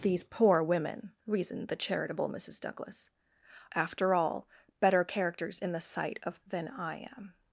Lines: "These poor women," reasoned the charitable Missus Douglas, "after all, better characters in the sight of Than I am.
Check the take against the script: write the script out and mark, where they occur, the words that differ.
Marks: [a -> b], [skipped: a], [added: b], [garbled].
"These poor women," reasoned the charitable Missus Douglas, "after all, better characters in the sight of Than I am.